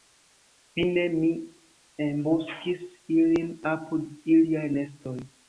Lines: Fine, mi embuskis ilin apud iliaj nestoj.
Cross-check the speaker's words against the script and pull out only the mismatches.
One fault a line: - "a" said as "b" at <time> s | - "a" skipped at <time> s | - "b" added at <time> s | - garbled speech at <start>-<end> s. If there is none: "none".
none